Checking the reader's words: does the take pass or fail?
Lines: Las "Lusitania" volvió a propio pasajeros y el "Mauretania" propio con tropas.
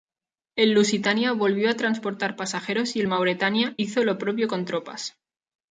fail